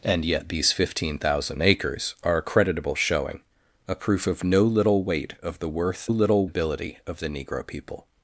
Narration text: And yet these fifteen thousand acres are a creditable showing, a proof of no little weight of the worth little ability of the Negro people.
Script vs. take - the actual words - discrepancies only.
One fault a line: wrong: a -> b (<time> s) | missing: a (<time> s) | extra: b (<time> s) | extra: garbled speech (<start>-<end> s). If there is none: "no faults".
no faults